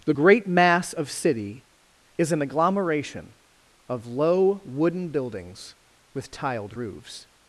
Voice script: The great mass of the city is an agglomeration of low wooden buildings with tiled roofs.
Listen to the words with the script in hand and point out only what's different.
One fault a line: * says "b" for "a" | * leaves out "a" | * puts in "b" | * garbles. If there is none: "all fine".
* leaves out "the"